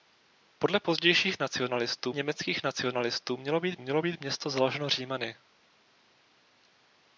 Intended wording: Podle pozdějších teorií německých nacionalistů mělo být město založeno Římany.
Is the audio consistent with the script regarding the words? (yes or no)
no